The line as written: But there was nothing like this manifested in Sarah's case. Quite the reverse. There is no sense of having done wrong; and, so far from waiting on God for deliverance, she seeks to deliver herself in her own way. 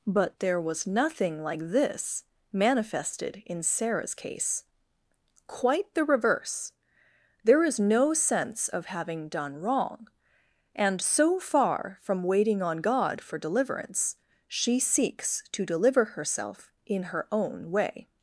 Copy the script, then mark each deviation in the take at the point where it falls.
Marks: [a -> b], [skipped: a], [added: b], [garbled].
But there was nothing like this manifested in Sarah's case. Quite the reverse. There is no sense of having done wrong; and, so far from waiting on God for deliverance, she seeks to deliver herself in her own way.